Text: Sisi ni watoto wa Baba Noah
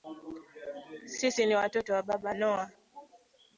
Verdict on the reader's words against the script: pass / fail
pass